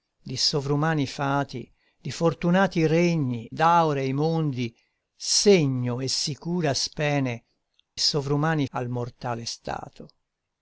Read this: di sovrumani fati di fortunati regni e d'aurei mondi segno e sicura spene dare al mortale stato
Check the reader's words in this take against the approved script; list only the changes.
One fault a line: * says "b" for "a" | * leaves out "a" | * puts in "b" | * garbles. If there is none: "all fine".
* leaves out "e"
* says "sovrumani" for "dare"